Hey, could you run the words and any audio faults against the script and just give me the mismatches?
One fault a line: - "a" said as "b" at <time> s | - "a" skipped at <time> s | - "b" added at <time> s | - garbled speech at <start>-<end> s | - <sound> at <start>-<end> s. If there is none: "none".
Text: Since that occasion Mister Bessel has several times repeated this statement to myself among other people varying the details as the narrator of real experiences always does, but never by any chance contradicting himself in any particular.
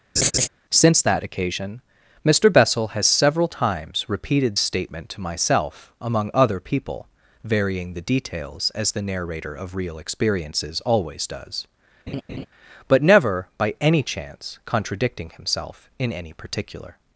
- laugh at 0.2-0.5 s
- "this" skipped at 4.6 s
- laugh at 12.1-12.5 s